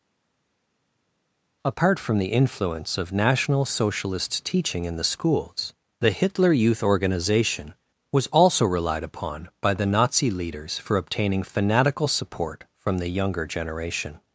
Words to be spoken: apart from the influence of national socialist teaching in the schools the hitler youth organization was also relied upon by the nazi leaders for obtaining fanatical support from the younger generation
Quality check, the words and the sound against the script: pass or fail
pass